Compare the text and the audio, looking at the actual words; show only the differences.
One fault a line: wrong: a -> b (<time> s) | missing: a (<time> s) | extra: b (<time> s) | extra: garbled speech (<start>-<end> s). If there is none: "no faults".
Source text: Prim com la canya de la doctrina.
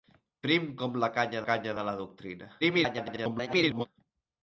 extra: canya (1.5 s)
extra: garbled speech (2.6-3.9 s)